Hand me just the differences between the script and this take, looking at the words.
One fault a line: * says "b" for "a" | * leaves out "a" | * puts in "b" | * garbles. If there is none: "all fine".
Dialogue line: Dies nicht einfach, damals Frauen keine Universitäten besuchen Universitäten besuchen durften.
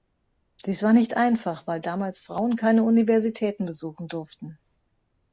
* puts in "war"
* puts in "weil"
* leaves out "Universitäten besuchen"